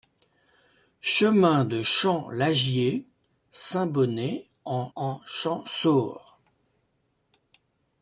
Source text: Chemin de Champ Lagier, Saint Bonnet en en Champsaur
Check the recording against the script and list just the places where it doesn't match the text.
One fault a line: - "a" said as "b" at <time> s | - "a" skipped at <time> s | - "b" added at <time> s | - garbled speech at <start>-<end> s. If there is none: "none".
none